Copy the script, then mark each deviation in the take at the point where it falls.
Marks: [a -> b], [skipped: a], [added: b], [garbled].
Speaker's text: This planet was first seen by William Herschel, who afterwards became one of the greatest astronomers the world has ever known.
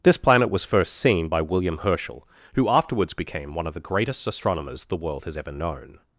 This planet was first seen by William Herschel, who afterwards became one of the greatest astronomers the world has ever known.